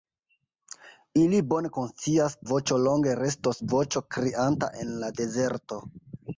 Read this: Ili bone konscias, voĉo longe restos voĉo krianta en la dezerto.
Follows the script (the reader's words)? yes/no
yes